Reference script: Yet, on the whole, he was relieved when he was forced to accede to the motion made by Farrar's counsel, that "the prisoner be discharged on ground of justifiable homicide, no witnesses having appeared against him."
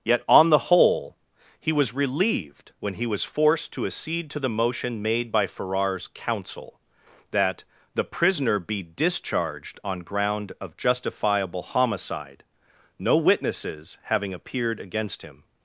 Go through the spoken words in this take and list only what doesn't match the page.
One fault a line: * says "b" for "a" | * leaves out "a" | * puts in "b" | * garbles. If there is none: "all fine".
all fine